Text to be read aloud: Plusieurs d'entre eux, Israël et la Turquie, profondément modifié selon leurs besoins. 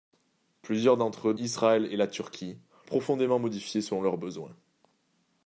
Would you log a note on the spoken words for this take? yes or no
no